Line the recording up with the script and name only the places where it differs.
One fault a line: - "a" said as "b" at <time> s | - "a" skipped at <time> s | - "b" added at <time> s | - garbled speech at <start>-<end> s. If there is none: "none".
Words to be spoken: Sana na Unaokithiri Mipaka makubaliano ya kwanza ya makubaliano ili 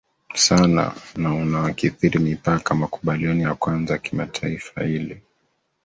- "makubaliano" said as "kimataifa" at 4.0 s